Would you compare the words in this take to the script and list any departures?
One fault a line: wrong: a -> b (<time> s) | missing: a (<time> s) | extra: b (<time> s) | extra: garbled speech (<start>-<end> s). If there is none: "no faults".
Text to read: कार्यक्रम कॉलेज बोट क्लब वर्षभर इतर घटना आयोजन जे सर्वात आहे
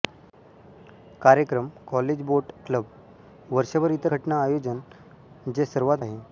no faults